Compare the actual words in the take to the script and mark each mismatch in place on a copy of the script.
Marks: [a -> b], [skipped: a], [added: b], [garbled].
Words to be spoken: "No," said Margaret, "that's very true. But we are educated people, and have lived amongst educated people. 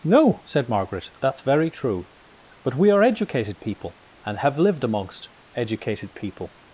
"No," said Margaret, "that's very true. But we are educated people, and have lived amongst educated people.